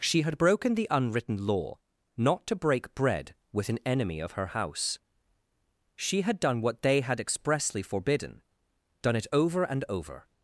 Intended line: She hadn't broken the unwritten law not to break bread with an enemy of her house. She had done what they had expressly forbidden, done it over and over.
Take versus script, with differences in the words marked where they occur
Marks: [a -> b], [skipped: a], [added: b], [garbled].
She [hadn't -> had] broken the unwritten law not to break bread with an enemy of her house. She had done what they had expressly forbidden, done it over and over.